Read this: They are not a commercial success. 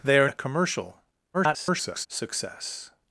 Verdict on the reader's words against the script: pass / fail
fail